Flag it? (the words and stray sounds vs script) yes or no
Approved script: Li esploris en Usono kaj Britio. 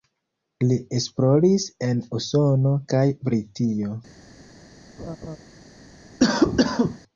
yes